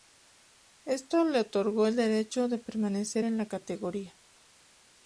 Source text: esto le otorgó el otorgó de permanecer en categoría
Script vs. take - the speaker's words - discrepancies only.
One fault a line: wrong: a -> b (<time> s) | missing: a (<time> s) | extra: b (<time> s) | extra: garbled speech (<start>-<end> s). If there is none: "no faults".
wrong: otorgó -> derecho (1.9 s)
extra: la (3.4 s)